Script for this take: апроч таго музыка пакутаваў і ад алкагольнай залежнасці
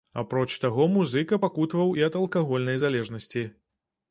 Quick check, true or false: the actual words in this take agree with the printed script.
true